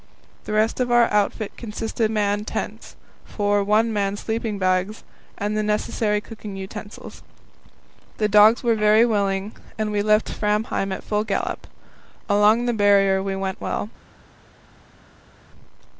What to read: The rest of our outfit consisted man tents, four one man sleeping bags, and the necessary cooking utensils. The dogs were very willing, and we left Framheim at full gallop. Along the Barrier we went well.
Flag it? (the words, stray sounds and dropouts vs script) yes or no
no